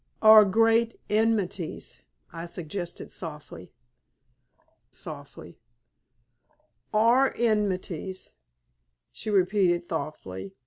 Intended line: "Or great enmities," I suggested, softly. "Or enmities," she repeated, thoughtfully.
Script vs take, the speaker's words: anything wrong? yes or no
yes